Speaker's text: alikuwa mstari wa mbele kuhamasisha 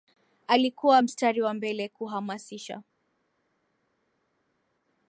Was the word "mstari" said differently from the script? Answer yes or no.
no